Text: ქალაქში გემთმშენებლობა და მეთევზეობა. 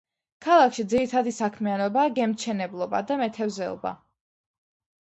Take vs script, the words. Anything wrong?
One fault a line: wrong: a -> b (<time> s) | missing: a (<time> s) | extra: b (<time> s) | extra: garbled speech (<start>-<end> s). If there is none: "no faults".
extra: ძირითადი საქმიანობაა (0.9 s)